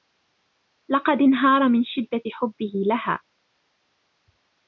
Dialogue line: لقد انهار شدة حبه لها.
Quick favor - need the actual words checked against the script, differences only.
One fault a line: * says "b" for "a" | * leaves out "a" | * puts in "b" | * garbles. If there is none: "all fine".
* puts in "من"